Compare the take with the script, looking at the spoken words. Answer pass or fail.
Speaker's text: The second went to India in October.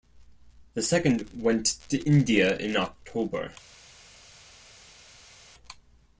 pass